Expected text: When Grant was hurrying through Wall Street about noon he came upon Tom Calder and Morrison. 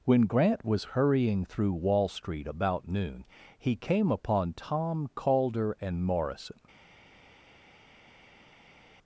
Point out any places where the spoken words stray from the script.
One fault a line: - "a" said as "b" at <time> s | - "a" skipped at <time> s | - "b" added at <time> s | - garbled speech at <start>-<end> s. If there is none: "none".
none